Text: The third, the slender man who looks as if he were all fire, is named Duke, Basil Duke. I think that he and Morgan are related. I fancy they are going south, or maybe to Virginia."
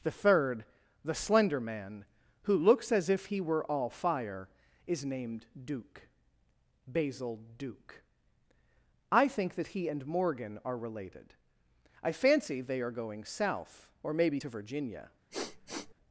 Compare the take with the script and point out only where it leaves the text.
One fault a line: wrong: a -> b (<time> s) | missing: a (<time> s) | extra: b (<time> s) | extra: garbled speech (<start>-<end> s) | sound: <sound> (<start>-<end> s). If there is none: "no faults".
sound: sniff (15.3-15.9 s)